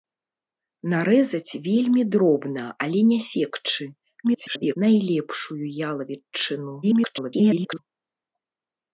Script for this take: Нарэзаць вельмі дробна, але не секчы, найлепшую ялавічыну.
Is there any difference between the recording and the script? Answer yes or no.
yes